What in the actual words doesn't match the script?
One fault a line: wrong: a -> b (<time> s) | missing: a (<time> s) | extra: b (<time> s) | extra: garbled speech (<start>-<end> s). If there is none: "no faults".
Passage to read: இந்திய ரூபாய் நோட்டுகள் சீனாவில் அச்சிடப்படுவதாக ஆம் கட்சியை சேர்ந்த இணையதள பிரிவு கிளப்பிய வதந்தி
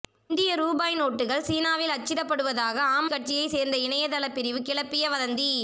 no faults